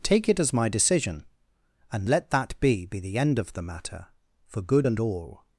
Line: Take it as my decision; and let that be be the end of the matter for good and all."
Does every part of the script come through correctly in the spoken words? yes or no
yes